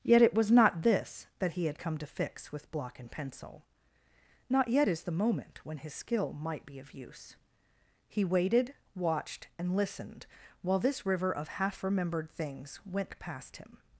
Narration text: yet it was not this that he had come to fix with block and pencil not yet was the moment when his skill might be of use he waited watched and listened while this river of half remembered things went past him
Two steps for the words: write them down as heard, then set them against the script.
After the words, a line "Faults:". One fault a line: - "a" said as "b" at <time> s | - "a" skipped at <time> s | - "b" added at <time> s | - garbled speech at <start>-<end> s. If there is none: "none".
yet it was not this that he had come to fix with block and pencil not yet is the moment when his skill might be of use he waited watched and listened while this river of half remembered things went past him
Faults:
- "was" said as "is" at 4.9 s